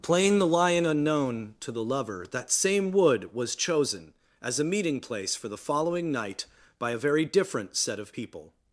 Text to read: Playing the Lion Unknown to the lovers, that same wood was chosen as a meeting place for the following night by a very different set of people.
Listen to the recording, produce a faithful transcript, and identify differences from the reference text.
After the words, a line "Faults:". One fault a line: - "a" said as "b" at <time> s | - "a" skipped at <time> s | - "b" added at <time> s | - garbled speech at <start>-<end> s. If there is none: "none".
Playing the Lion Unknown to the lover, that same wood was chosen as a meeting place for the following night by a very different set of people.
Faults:
- "lovers" said as "lover" at 1.8 s